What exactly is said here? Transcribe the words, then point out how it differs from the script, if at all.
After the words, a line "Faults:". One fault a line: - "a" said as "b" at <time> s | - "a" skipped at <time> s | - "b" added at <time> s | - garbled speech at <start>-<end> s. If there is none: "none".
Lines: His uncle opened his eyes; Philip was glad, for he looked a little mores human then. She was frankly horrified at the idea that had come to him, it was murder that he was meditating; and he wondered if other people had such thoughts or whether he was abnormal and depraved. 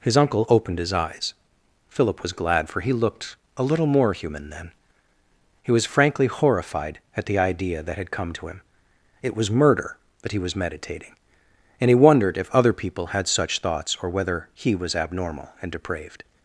His uncle opened his eyes; Philip was glad, for he looked a little more human then. He was frankly horrified at the idea that had come to him, it was murder that he was meditating; and he wondered if other people had such thoughts or whether he was abnormal and depraved.
Faults:
- "mores" said as "more" at 3.9 s
- "She" said as "He" at 5.6 s